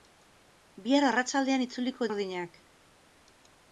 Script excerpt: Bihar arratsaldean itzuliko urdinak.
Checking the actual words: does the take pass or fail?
pass